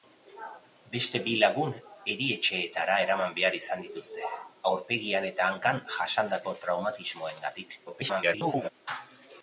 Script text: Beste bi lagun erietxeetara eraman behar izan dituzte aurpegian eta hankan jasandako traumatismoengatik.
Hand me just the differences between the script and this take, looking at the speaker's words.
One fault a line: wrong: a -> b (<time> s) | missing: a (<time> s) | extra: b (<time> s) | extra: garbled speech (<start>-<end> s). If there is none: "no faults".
extra: garbled speech (7.9-8.7 s)